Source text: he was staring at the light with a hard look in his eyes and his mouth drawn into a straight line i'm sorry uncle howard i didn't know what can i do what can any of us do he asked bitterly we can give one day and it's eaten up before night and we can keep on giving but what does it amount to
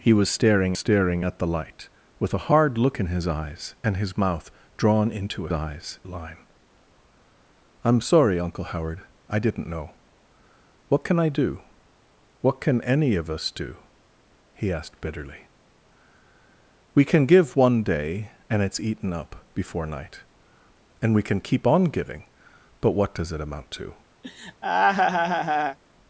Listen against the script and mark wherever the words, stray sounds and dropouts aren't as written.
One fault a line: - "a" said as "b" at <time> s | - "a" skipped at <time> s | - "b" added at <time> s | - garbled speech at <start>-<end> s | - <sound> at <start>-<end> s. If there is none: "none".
- "staring" added at 0.8 s
- "straight" said as "eyes" at 5.5 s
- laugh at 24.2-25.8 s